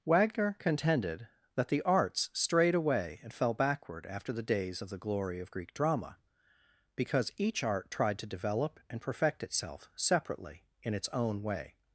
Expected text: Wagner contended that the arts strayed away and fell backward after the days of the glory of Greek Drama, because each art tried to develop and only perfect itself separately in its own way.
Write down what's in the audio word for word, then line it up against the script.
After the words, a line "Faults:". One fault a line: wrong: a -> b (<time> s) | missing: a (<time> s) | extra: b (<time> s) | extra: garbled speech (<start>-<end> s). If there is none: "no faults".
Wagner contended that the arts strayed away and fell backward after the days of the glory of Greek Drama, because each art tried to develop and perfect itself separately in its own way.
Faults:
missing: only (9.0 s)